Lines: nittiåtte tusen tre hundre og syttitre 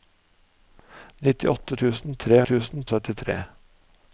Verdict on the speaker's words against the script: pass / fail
fail